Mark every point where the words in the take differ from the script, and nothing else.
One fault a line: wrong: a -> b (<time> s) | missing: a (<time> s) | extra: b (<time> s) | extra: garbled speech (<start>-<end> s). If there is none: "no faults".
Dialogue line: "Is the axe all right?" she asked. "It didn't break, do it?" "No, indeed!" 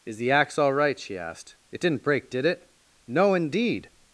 wrong: do -> did (2.3 s)